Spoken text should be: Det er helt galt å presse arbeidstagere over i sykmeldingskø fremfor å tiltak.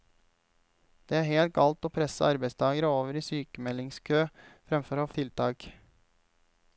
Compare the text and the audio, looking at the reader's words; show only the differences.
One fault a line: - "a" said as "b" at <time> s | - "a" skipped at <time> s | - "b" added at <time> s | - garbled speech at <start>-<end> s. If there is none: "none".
none